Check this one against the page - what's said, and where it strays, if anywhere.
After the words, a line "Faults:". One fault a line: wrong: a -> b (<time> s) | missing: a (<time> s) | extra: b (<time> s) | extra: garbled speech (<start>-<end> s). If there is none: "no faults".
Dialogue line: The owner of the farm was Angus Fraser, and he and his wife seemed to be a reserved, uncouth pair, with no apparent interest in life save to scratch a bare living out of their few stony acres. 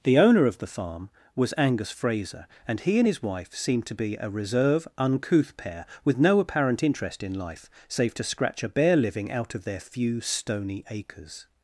The owner of the farm was Angus Fraser, and he and his wife seemed to be a reserve, uncouth pair, with no apparent interest in life save to scratch a bare living out of their few stony acres.
Faults:
wrong: reserved -> reserve (4.3 s)